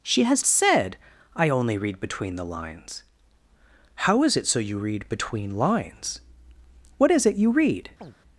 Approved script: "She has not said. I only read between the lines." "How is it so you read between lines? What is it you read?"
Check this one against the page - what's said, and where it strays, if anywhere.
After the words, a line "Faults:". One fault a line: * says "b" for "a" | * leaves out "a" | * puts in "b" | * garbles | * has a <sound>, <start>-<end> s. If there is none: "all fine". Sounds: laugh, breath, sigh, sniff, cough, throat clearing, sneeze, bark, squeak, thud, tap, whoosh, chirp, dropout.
"She has said. I only read between the lines." "How is it so you read between lines? What is it you read?"
Faults:
* leaves out "not"
* has a chirp, 8.0-8.2 s